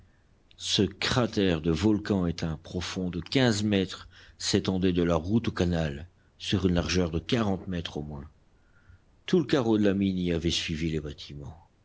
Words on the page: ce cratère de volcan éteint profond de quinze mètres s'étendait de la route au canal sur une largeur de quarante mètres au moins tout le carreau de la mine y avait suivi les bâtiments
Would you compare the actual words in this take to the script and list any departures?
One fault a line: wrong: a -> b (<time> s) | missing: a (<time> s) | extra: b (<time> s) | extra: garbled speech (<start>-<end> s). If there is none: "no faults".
no faults